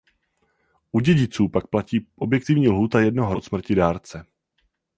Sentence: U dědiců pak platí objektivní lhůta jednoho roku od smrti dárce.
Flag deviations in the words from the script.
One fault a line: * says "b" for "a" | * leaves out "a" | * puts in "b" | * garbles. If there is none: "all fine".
* leaves out "roku"